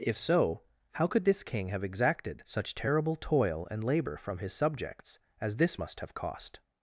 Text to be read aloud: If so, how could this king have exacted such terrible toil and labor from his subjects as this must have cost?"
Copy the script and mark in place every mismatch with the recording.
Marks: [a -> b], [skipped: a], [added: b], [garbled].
If so, how could this king have exacted such terrible toil and labor from his subjects as this must have cost?"